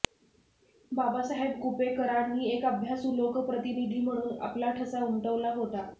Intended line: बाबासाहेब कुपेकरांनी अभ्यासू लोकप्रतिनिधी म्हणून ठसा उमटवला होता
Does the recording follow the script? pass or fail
fail